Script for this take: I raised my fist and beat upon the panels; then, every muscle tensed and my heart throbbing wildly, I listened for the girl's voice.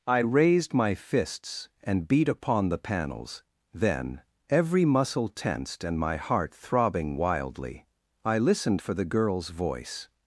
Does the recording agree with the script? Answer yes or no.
no